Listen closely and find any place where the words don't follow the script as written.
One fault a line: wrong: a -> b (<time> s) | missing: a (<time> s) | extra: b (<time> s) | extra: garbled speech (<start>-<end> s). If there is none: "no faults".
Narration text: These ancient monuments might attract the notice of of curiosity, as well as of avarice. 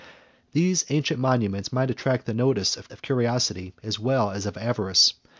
no faults